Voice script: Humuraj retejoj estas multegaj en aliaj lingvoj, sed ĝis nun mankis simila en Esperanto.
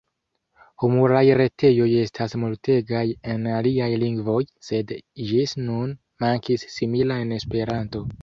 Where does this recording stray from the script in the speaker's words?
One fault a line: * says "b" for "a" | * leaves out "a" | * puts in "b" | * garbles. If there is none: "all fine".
all fine